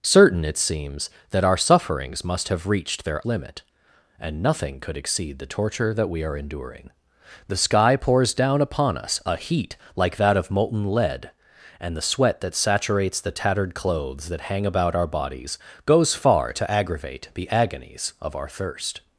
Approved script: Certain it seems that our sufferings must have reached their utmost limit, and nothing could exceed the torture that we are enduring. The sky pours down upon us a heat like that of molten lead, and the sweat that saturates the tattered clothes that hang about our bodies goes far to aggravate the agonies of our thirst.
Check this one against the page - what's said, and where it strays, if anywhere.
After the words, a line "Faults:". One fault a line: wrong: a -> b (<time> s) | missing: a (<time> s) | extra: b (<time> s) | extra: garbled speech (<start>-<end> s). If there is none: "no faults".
Certain it seems that our sufferings must have reached their limit, and nothing could exceed the torture that we are enduring. The sky pours down upon us a heat like that of molten lead, and the sweat that saturates the tattered clothes that hang about our bodies goes far to aggravate the agonies of our thirst.
Faults:
missing: utmost (3.2 s)